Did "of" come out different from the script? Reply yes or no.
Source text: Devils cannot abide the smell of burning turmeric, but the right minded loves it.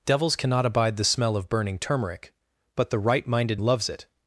no